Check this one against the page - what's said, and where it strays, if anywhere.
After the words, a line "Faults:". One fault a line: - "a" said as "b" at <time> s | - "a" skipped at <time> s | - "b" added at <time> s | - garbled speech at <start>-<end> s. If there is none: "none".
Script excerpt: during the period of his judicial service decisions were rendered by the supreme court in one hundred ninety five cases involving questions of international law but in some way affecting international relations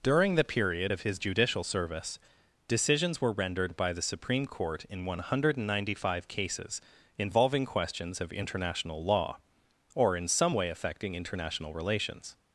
during the period of his judicial service decisions were rendered by the supreme court in one hundred ninety five cases involving questions of international law or in some way affecting international relations
Faults:
- "but" said as "or" at 9.9 s